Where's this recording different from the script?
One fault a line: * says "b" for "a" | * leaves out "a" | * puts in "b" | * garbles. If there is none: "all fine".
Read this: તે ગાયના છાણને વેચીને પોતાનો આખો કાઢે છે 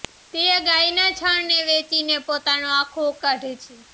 all fine